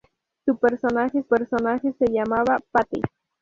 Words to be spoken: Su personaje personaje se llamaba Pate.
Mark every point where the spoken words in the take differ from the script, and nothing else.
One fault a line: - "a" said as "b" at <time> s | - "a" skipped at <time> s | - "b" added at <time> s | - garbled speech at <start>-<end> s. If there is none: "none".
none